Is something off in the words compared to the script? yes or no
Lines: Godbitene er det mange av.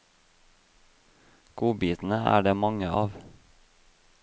no